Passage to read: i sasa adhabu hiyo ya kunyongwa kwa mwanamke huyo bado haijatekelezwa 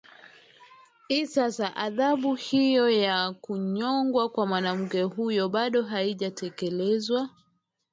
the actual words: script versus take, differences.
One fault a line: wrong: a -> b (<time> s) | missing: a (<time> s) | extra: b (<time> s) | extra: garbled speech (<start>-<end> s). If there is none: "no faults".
no faults